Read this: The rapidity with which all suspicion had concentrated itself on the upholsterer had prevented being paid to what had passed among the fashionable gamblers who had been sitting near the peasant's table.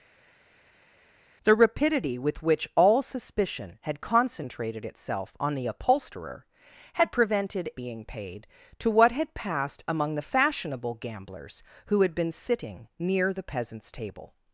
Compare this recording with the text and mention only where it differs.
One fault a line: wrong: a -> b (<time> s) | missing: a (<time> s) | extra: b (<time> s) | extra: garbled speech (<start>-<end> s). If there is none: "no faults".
no faults